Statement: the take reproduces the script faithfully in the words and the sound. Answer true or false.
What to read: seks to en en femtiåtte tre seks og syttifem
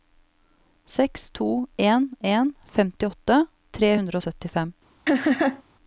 false